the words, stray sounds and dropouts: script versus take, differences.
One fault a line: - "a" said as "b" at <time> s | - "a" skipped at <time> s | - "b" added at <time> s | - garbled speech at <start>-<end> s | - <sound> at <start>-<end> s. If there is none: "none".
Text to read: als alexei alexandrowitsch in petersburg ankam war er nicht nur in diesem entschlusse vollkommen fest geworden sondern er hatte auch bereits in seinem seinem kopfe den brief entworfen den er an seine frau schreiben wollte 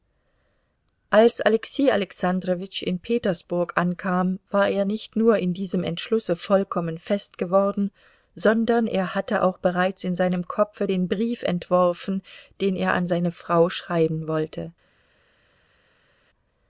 - "seinem" skipped at 10.5 s